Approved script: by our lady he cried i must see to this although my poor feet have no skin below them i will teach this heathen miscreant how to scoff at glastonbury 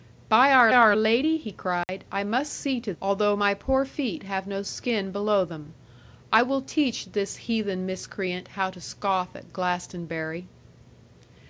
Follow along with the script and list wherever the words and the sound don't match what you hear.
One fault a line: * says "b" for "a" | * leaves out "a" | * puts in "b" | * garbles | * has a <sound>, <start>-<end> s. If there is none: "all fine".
* puts in "our"
* has a dropout, 1.8-1.9 s
* leaves out "this"